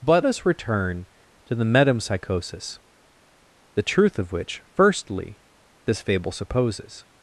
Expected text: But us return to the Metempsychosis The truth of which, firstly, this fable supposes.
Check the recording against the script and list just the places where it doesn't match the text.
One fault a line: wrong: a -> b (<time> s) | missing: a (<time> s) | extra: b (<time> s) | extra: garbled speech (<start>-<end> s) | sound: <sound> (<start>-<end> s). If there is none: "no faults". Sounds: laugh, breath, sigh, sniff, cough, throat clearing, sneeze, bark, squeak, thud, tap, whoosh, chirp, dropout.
no faults